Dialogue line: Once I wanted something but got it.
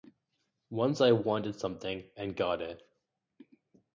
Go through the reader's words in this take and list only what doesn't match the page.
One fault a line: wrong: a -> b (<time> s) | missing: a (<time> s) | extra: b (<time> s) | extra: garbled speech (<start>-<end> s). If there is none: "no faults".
wrong: but -> and (2.2 s)